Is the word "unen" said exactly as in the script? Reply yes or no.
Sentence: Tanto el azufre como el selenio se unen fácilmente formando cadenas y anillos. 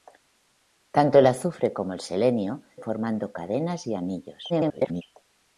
no